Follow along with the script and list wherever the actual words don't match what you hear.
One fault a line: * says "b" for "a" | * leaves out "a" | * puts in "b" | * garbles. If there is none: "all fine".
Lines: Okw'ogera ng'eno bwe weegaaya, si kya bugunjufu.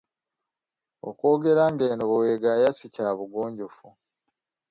all fine